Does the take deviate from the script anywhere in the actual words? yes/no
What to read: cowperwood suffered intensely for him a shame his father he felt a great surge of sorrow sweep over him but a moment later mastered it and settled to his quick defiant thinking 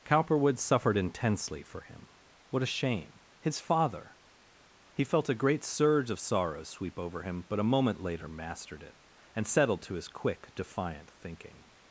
yes